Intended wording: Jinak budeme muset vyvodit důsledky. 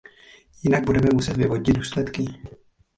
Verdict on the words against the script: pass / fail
pass